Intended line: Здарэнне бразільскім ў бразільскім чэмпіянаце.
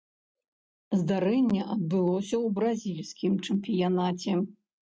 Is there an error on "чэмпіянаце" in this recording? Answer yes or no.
no